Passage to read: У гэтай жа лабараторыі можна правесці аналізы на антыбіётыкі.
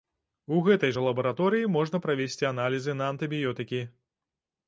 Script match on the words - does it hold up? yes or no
yes